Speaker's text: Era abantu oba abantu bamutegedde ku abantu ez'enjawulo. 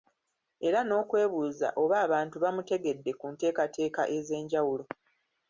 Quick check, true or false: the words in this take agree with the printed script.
false